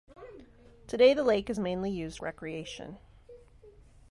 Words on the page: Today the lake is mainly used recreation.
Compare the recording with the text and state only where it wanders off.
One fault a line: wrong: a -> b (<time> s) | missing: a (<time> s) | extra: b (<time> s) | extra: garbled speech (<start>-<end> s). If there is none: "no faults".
no faults